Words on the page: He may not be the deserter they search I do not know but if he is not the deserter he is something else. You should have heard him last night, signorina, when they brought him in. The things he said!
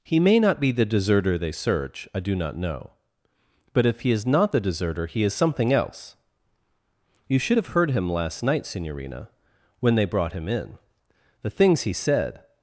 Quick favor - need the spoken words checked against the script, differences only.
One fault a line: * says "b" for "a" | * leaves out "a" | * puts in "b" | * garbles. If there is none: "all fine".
all fine